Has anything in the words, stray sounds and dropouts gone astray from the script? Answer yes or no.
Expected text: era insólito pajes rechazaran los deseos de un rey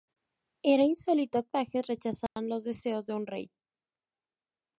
yes